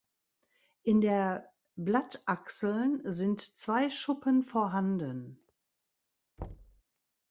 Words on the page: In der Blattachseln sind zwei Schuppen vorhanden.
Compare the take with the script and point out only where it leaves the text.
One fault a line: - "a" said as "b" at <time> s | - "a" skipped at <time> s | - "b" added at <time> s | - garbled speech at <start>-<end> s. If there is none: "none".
none